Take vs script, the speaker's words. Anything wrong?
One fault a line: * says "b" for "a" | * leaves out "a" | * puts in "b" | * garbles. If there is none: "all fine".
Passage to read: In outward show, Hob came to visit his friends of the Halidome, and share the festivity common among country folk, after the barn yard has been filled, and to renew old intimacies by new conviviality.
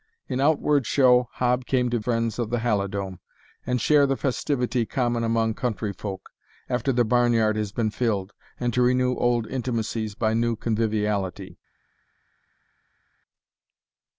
* leaves out "visit his"